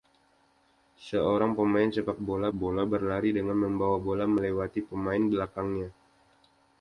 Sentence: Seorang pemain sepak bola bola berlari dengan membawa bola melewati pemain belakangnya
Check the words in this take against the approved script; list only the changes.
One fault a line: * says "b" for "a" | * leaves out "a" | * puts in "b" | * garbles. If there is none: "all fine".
all fine